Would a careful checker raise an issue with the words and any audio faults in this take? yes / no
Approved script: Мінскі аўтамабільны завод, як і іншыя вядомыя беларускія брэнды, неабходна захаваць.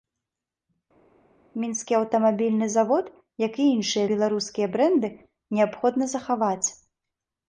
yes